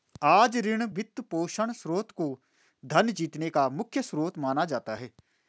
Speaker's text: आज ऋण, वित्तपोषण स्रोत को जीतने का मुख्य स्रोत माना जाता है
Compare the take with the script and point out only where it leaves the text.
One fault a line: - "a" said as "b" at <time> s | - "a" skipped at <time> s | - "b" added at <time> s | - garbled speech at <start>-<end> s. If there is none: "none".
- "धन" added at 2.8 s